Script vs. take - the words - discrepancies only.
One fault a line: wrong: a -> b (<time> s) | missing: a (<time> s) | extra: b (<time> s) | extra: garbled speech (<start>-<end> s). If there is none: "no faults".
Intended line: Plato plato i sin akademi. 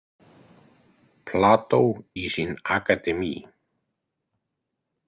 missing: plato (1.8 s)